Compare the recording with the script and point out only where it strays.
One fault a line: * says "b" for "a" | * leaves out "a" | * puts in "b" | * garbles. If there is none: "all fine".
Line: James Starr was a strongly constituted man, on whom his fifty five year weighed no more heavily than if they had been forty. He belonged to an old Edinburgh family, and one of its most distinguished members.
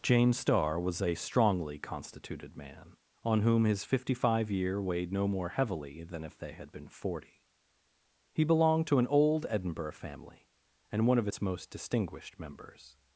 all fine